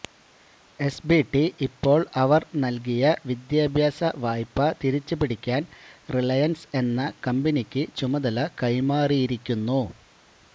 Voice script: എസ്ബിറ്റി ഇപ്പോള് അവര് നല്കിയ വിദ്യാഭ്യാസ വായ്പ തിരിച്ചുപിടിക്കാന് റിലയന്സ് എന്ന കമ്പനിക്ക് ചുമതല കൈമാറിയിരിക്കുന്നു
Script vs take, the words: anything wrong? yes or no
no